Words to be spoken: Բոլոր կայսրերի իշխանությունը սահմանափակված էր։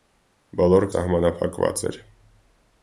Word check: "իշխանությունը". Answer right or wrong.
wrong